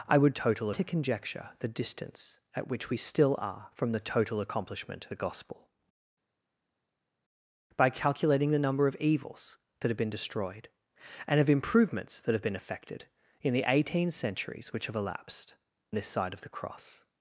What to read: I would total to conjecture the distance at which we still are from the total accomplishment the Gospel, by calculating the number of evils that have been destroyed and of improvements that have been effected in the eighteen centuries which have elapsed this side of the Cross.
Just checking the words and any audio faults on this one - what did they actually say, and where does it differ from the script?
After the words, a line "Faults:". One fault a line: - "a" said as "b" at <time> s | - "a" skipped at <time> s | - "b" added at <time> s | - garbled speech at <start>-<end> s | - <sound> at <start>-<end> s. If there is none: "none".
I would total to conjecture the distance at which we still are from the total accomplishment the Gospel, by calculating the number of evils that have been destroyed and of improvements that have been effected in the eighteen centuries which have elapsed this side of the Cross.
Faults:
none